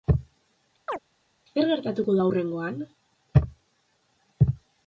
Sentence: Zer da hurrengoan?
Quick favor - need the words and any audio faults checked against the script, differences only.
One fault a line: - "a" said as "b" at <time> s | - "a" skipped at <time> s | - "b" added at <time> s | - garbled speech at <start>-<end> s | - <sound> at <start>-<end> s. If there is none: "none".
- chirp at 0.9-1.0 s
- "gertatuko" added at 1.7 s